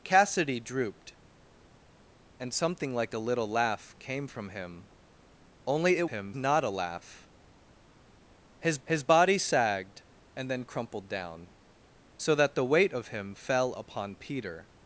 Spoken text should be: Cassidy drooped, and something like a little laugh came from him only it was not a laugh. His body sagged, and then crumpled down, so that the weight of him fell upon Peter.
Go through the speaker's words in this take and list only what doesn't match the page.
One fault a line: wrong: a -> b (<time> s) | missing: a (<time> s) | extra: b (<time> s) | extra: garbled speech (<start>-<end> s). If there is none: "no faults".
wrong: was -> him (6.1 s)
extra: his (8.8 s)